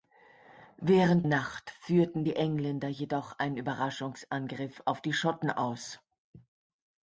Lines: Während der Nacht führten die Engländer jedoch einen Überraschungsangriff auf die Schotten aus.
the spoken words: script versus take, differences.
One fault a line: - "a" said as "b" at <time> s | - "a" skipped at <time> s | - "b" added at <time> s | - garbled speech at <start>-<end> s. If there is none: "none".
- "der" skipped at 1.3 s